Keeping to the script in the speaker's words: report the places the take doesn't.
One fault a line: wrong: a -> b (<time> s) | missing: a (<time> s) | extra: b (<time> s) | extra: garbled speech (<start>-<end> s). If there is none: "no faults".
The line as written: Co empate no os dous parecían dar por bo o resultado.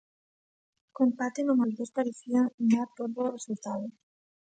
no faults